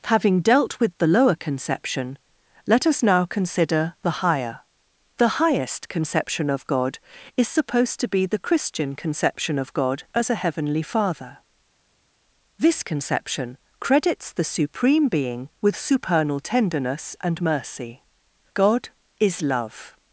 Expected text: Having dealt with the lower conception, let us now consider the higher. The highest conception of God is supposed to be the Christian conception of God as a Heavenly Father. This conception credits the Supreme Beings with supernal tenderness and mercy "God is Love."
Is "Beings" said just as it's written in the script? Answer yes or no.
no